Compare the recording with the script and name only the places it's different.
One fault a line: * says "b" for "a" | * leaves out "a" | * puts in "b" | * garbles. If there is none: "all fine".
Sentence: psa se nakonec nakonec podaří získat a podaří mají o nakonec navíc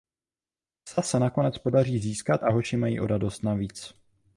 * leaves out "nakonec"
* says "hoši" for "podaří"
* says "radost" for "nakonec"